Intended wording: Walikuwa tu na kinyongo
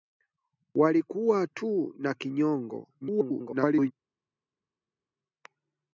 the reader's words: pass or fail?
fail